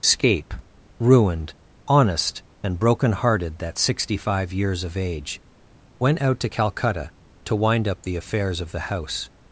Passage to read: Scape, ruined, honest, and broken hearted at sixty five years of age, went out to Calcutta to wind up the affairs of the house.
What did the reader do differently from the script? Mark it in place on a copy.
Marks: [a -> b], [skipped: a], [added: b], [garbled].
Scape, ruined, honest, and broken hearted [at -> that] sixty five years of age, went out to Calcutta to wind up the affairs of the house.